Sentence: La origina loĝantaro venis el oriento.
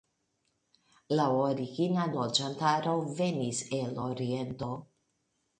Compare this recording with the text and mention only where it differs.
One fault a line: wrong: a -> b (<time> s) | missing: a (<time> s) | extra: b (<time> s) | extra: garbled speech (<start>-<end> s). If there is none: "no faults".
no faults